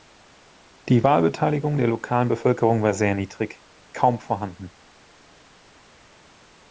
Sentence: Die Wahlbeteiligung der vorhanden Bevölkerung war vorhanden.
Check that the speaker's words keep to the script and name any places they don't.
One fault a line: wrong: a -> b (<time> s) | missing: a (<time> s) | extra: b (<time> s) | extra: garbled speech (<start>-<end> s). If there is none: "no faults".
wrong: vorhanden -> lokalen (1.9 s)
extra: sehr niedrig kaum (2.9 s)